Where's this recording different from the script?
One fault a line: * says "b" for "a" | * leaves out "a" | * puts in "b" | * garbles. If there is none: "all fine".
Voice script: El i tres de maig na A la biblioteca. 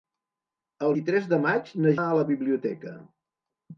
all fine